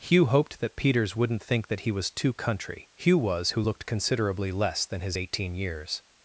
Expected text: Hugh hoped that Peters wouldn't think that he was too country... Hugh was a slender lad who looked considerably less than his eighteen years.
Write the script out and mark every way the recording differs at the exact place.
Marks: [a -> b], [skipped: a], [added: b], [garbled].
Hugh hoped that Peters wouldn't think that he was too country... Hugh was [skipped: a slender lad] who looked considerably less than his eighteen years.